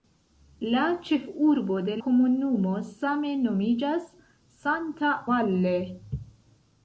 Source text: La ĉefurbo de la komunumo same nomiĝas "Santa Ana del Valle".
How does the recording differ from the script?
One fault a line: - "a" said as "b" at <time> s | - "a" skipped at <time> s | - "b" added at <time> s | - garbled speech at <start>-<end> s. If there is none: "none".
- "la" skipped at 2.0 s
- "Ana del" skipped at 5.1 s